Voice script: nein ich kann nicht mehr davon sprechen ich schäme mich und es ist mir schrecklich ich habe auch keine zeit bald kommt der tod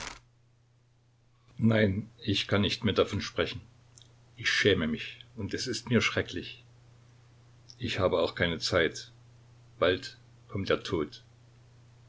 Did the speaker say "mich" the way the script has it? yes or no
yes